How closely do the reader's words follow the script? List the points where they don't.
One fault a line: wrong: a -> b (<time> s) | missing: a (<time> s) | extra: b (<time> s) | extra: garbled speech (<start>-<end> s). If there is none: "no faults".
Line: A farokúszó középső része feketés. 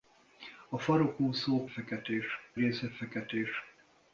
wrong: középső -> feketés (1.7 s)